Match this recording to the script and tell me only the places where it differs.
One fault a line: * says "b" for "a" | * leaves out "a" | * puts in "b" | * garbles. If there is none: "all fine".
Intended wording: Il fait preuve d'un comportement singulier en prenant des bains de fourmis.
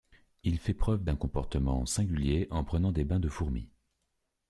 all fine